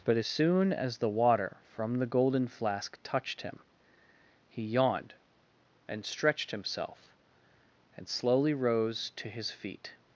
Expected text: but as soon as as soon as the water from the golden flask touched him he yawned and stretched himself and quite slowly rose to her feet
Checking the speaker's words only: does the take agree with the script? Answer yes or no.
no